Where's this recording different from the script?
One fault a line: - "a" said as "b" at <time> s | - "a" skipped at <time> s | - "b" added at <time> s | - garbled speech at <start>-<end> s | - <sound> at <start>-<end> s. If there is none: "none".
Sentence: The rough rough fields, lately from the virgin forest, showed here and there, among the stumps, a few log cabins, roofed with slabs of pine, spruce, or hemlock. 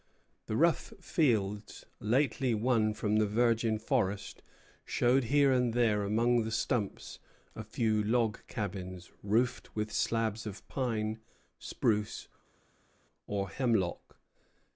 - "rough" skipped at 0.9 s
- "won" added at 2.5 s